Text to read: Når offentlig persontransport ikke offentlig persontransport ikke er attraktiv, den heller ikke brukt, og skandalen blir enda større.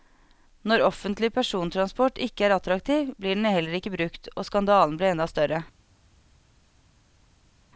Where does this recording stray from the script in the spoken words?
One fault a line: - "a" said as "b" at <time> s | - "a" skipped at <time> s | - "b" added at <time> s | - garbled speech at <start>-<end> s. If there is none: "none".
- "offentlig persontransport ikke" skipped at 2.5 s
- "blir" added at 3.2 s